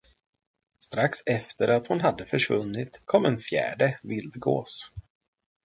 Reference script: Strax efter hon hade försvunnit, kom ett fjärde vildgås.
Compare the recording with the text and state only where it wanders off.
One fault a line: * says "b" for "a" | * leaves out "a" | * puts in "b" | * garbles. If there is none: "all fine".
* puts in "att"
* says "en" for "ett"